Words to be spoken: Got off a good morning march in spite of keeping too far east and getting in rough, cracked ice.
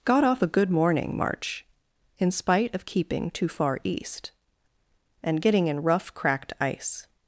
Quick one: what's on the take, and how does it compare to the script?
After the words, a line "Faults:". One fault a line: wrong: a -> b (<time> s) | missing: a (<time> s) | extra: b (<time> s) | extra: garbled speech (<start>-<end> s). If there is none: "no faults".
Got off a good morning march in spite of keeping too far east and getting in rough, cracked ice.
Faults:
no faults